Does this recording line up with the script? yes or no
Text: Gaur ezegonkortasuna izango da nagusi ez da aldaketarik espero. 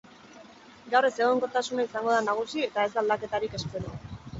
no